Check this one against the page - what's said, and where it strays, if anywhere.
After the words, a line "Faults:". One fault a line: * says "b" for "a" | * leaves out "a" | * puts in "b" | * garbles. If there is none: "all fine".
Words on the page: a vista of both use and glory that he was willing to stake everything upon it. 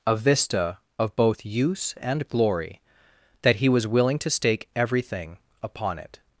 a vista of both use and glory that he was willing to stake everything upon it.
Faults:
all fine